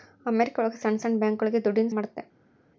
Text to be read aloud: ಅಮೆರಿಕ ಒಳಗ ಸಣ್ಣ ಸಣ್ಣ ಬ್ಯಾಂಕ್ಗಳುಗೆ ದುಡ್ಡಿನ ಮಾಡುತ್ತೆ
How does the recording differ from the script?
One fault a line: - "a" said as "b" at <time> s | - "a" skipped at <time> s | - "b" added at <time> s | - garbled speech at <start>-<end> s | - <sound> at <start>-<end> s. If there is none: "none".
none